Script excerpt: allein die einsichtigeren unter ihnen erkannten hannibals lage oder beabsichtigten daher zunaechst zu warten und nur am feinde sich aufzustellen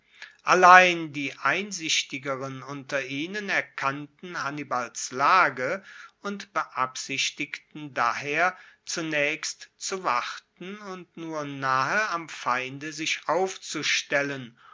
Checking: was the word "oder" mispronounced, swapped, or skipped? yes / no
yes